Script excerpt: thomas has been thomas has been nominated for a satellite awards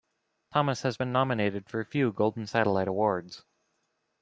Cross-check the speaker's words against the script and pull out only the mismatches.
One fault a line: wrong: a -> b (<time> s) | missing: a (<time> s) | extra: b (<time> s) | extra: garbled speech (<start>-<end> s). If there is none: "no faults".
missing: thomas has been (1.1 s)
extra: few golden (1.8 s)